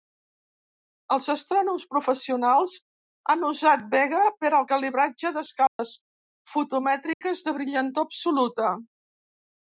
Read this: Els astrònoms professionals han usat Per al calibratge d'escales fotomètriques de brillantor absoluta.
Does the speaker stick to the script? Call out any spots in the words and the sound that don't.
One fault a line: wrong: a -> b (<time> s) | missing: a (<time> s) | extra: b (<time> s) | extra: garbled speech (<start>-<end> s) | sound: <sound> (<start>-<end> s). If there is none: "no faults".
extra: Vega (3.9 s)
sound: dropout (5.7-5.8 s)
sound: dropout (7.1-7.2 s)